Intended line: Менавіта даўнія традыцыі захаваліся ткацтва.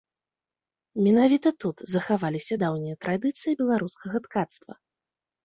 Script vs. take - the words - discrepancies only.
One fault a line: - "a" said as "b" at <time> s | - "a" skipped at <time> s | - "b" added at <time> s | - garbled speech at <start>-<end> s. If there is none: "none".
- "тут захаваліся" added at 1.6 s
- "захаваліся" said as "беларускага" at 3.6 s